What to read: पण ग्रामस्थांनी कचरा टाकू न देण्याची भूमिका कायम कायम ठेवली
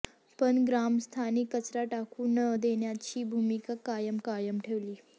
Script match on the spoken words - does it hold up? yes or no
yes